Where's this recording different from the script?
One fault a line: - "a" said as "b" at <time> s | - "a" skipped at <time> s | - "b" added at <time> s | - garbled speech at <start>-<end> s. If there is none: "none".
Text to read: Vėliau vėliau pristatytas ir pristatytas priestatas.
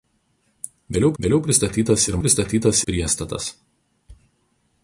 none